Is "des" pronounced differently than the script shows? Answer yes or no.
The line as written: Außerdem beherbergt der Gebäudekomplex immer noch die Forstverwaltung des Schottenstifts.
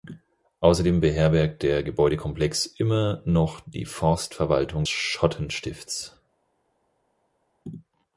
yes